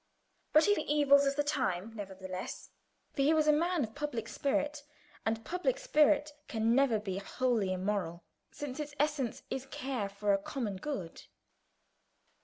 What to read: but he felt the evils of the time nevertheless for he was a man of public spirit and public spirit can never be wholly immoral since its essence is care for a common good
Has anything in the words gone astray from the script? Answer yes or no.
yes